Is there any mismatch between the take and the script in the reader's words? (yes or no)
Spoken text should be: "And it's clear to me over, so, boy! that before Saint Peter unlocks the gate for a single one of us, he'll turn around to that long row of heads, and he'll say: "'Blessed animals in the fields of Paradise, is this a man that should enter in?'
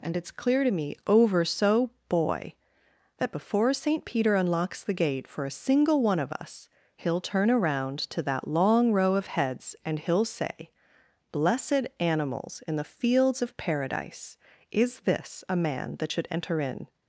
no